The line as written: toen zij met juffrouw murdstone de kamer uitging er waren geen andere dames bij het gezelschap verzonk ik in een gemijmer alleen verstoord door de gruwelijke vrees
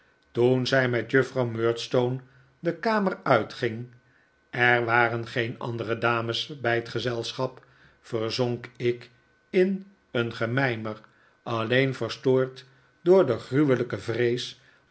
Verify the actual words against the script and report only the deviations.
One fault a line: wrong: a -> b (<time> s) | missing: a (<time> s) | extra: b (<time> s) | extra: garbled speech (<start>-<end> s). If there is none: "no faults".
no faults